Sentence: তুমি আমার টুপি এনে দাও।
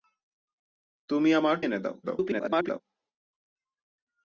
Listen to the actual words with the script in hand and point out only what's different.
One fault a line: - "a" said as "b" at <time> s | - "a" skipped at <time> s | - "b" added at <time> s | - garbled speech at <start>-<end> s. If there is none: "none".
- "টুপি" skipped at 1.6 s
- garbled speech at 2.0-2.8 s